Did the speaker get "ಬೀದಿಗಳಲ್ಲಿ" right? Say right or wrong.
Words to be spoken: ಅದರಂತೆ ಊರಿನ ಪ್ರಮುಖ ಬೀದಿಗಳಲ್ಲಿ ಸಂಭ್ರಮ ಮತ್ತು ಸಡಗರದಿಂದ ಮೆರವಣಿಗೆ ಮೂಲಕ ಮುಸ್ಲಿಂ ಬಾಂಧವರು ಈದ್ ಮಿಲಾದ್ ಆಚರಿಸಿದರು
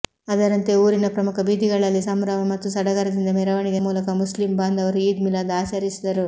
right